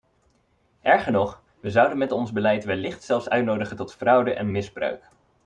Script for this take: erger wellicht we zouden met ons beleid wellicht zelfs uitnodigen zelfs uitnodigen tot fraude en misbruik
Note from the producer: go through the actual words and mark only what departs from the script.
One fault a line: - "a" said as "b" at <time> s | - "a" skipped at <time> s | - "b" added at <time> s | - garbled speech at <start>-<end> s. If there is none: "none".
- "wellicht" said as "nog" at 1.1 s
- "zelfs uitnodigen" skipped at 3.8 s